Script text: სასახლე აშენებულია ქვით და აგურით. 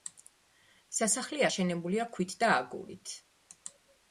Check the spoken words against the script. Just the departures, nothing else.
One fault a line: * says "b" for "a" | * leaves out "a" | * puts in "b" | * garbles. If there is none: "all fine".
all fine